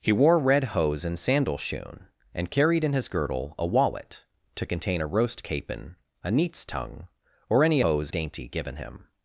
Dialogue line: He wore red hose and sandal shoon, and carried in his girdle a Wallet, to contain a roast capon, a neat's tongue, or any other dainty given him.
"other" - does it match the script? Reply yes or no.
no